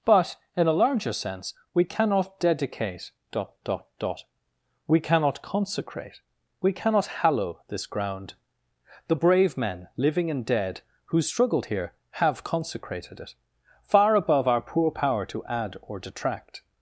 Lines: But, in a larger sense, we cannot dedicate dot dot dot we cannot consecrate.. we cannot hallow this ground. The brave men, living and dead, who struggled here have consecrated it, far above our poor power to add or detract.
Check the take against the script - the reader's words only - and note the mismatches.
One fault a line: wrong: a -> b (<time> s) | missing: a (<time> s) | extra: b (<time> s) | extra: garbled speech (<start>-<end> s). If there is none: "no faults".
no faults